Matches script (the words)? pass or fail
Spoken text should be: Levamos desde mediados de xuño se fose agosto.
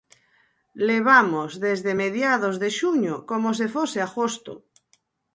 fail